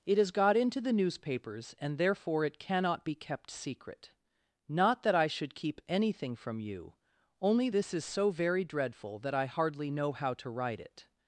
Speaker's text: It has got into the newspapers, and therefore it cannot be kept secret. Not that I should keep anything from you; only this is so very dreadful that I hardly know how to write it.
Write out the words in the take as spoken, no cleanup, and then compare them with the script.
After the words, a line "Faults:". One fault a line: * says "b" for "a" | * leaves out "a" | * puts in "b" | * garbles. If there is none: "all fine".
It has got into the newspapers, and therefore it cannot be kept secret. Not that I should keep anything from you; only this is so very dreadful that I hardly know how to write it.
Faults:
all fine